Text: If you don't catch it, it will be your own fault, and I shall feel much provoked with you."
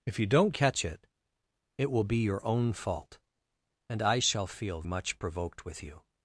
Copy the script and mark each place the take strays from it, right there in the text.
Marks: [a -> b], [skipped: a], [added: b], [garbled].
If you don't catch it, it will be your own fault, and I shall feel much provoked with you."